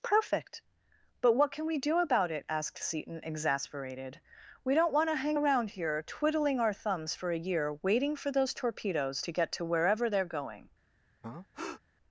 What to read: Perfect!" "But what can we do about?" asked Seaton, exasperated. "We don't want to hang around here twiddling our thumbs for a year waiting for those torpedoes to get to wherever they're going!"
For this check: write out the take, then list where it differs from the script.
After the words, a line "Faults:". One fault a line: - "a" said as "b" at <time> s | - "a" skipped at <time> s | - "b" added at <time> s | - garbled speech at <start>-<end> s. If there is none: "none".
Perfect!" "But what can we do about it?" asked Seaton, exasperated. "We don't want to hang around here twiddling our thumbs for a year waiting for those torpedoes to get to wherever they're going!"
Faults:
- "it" added at 2.3 s